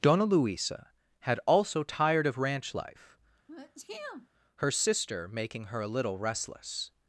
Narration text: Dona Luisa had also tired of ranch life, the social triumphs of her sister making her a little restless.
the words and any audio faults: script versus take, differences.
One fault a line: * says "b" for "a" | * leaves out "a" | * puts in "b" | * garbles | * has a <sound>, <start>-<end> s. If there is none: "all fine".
* leaves out "the social triumphs of"
* has a sneeze, 3.5-4.3 s